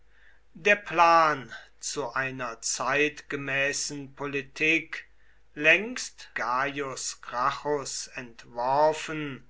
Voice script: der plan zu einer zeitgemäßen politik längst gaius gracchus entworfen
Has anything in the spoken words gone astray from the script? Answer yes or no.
no